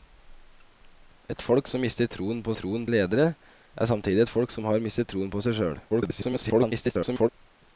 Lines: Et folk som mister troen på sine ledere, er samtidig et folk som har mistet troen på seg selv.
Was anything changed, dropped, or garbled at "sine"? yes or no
yes